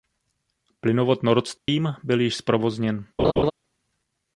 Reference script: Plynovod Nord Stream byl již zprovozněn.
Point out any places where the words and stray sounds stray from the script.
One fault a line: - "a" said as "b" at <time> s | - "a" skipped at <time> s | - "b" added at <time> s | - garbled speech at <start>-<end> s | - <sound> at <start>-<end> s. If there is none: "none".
- dropout at 1.6-1.7 s
- laugh at 3.2-3.5 s